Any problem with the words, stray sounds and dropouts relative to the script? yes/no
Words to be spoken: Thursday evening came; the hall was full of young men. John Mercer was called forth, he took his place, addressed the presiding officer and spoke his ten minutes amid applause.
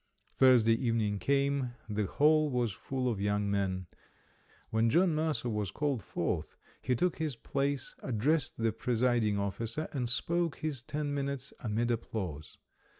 yes